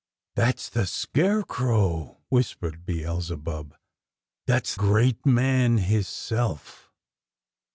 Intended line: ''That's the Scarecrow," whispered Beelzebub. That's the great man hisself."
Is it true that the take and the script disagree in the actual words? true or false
true